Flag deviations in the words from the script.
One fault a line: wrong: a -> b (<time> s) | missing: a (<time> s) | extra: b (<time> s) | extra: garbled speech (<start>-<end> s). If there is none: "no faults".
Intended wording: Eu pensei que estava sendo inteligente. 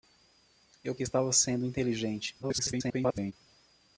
missing: pensei (0.9 s)
extra: garbled speech (2.4-3.3 s)